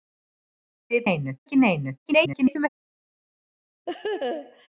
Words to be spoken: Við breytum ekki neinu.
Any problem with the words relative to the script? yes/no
yes